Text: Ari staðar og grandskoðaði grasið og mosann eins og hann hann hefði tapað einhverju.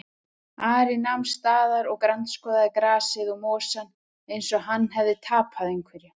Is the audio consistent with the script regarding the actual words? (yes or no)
no